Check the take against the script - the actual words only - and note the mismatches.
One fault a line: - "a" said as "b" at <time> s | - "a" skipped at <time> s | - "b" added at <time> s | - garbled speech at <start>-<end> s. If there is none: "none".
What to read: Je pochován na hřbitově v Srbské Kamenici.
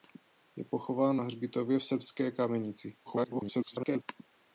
- garbled speech at 3.0-4.0 s